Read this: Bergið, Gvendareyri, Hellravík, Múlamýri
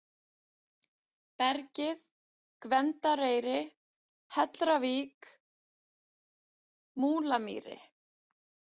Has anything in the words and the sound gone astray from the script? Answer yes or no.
no